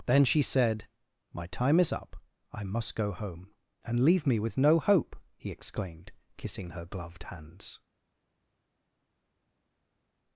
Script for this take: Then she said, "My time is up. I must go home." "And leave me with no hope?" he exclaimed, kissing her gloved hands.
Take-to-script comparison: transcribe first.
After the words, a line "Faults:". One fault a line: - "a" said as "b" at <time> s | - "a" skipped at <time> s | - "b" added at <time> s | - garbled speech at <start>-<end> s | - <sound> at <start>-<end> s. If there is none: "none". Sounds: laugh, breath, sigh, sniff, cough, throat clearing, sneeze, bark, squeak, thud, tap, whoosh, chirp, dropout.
Then she said, "My time is up. I must go home." "And leave me with no hope?" he exclaimed, kissing her gloved hands.
Faults:
none